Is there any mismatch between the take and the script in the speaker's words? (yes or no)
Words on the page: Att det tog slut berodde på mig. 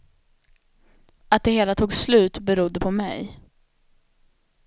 yes